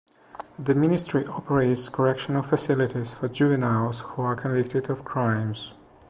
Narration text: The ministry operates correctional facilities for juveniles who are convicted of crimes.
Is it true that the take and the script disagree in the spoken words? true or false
false